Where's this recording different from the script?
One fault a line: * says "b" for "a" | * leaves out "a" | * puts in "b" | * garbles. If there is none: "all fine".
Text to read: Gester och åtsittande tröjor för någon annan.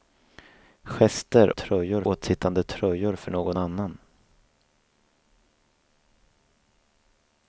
* says "tröjor" for "och"